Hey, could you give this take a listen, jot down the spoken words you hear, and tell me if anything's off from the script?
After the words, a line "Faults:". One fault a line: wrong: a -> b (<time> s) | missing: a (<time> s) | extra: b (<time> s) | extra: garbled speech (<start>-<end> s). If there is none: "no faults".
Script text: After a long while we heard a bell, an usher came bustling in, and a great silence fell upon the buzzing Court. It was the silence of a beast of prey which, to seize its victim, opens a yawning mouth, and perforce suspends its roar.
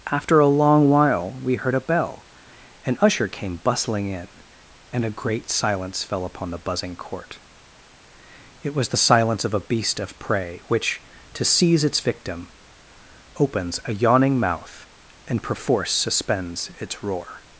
After a long while we heard a bell, an usher came bustling in, and a great silence fell upon the buzzing Court. It was the silence of a beast of prey which, to seize its victim, opens a yawning mouth, and perforce suspends its roar.
Faults:
no faults